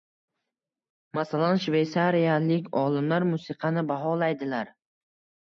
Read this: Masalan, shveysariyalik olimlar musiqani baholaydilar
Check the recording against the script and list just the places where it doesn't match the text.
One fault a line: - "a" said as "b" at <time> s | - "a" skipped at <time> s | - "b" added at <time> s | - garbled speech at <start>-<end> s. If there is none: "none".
none